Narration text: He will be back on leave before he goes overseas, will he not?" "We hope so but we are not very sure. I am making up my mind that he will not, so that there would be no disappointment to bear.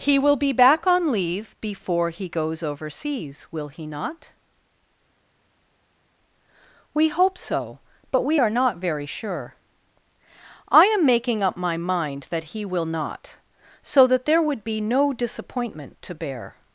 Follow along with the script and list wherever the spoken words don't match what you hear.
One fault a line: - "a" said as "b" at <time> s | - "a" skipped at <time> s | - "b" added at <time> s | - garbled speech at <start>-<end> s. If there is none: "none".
none